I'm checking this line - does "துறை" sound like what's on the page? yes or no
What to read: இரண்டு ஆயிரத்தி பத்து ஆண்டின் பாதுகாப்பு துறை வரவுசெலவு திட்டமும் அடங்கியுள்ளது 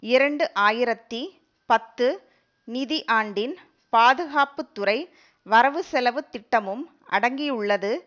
yes